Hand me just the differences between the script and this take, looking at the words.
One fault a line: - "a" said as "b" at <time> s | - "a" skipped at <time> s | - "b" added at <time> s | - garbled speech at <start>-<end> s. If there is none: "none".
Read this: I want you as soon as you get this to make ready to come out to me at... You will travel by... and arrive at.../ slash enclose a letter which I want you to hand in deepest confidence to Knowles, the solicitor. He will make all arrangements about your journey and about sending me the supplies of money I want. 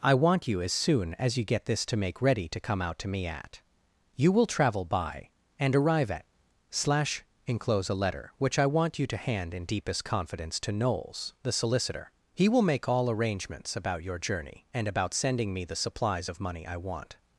none